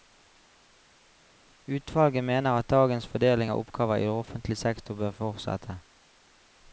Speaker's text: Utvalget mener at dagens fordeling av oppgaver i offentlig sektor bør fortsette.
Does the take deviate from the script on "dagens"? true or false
false